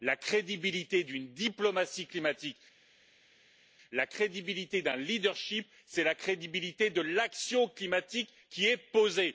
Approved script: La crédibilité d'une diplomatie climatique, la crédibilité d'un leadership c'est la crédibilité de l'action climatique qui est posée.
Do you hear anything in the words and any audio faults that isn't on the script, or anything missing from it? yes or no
no